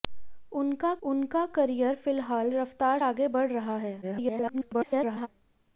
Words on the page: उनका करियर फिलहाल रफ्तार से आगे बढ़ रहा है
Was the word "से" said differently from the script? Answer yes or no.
yes